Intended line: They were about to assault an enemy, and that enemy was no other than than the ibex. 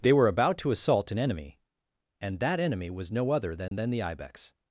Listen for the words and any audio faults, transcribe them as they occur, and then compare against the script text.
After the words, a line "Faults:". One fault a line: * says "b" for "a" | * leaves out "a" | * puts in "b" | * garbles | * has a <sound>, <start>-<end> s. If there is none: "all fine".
They were about to assault an enemy, and that enemy was no other than than the ibex.
Faults:
* has a dropout, 3.7-3.7 s